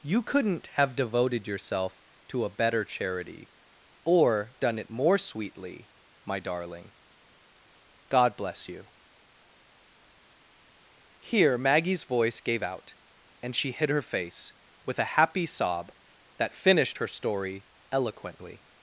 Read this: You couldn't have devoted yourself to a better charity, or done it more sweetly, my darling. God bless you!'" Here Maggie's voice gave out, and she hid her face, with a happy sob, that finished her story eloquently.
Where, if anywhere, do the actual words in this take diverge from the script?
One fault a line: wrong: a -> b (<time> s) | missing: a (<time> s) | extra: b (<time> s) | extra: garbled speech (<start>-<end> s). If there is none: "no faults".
no faults